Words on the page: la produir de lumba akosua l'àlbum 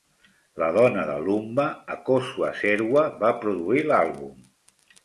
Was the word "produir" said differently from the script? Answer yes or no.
yes